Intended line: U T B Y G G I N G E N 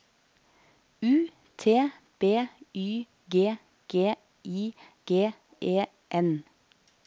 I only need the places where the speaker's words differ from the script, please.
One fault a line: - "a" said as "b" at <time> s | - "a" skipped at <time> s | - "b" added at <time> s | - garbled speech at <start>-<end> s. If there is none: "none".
- "N" skipped at 4.7 s